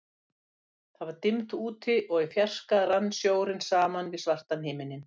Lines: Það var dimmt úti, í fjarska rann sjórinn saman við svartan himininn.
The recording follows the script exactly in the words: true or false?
false